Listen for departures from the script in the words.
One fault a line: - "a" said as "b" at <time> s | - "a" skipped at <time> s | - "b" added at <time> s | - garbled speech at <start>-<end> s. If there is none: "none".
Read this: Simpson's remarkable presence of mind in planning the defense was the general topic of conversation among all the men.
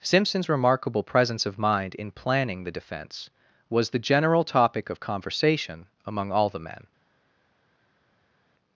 none